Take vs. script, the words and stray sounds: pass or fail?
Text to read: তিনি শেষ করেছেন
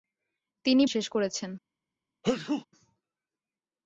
fail